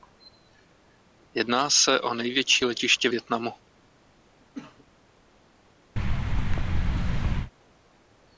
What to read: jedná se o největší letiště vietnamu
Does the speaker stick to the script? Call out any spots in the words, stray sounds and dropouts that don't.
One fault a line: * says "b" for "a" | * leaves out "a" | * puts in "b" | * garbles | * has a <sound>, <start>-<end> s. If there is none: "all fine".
* has a cough, 4.4-4.9 s
* has a thud, 6.0-7.5 s